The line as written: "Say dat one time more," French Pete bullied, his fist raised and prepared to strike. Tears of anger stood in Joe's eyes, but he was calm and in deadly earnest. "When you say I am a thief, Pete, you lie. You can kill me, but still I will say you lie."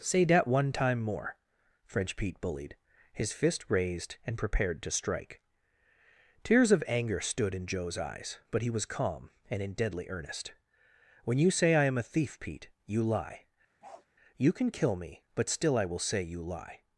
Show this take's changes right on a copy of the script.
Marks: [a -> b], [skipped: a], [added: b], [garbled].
"Say dat one time more," French Pete bullied, his fist raised and prepared to strike. Tears of anger stood in Joe's eyes, but he was calm and in deadly earnest. "When you say I am a thief, Pete, you lie. You can kill me, but still I will say you lie."